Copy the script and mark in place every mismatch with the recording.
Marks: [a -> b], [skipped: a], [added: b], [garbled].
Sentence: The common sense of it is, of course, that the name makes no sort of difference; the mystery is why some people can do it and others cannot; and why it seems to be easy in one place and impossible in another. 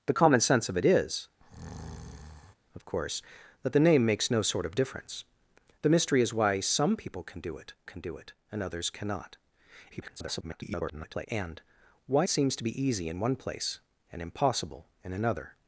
The common sense of it is, of course, that the name makes no sort of difference; the mystery is why some people can do it [added: can do it] and others cannot; [garbled] and why [skipped: it] seems to be easy in one place and impossible in another.